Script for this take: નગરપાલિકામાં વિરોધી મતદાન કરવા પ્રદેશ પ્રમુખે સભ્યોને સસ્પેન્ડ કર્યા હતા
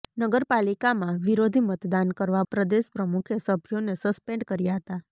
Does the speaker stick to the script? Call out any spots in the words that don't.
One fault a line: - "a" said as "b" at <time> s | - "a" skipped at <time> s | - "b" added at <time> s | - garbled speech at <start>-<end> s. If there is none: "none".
none